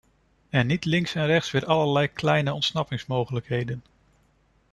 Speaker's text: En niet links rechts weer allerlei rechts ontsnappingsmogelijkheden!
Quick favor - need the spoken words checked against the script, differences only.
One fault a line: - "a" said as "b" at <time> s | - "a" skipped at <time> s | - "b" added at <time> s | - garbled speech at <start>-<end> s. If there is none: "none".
- "en" added at 1.1 s
- "rechts" said as "kleine" at 2.1 s